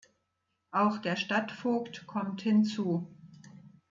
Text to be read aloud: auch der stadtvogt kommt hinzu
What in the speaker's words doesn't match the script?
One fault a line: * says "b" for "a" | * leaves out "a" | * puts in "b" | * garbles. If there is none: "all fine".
all fine